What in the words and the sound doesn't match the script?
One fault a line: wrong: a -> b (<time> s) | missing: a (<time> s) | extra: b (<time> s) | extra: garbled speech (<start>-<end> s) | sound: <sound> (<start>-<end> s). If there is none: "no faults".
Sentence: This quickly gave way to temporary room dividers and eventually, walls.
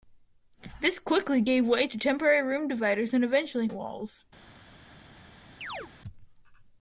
sound: chirp (5.6-5.9 s)